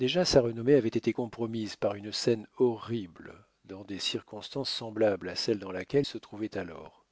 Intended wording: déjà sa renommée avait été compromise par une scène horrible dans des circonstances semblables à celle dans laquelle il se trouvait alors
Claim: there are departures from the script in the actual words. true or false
true